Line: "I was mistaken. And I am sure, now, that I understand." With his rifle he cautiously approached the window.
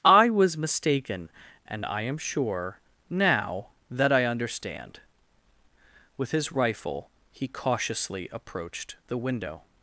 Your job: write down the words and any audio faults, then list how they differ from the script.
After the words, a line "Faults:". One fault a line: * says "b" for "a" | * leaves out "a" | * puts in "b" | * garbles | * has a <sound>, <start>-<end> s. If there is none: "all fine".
"I was mistaken. And I am sure, now, that I understand." With his rifle he cautiously approached the window.
Faults:
all fine